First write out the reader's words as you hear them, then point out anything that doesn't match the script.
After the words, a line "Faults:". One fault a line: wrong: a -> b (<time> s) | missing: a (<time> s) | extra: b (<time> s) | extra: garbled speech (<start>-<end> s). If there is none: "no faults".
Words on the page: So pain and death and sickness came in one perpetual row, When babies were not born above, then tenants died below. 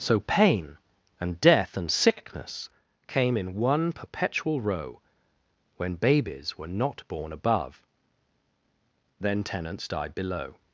So pain and death and sickness came in one perpetual row, When babies were not born above, then tenants died below.
Faults:
no faults